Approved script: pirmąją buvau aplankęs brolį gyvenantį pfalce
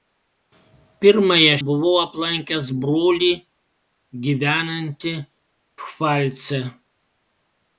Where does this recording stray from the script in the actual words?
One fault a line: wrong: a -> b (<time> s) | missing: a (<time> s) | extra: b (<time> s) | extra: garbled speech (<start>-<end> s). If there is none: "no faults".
no faults